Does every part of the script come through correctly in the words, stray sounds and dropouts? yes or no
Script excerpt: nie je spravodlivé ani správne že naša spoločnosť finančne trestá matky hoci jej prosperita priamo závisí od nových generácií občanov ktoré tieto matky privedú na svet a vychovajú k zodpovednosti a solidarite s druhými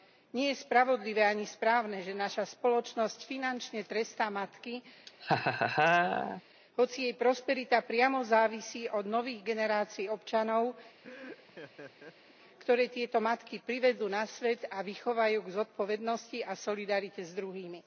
no